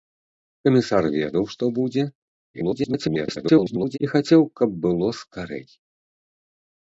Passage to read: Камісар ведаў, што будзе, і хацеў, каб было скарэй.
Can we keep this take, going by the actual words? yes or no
no